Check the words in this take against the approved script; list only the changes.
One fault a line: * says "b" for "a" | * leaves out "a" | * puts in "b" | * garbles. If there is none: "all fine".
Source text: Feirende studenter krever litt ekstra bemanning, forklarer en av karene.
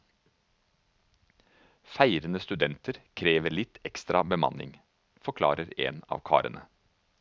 all fine